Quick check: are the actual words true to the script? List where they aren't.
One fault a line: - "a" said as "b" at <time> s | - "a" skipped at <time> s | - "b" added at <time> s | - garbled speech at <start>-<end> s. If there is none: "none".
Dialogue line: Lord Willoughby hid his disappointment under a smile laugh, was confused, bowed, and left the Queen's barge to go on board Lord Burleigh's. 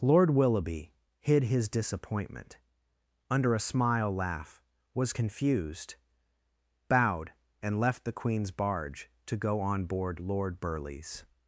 none